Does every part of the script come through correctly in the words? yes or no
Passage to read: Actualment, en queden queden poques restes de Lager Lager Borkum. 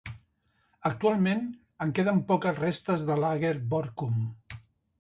no